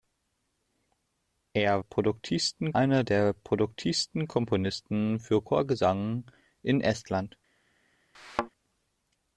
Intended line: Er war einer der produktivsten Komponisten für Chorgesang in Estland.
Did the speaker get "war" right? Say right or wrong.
wrong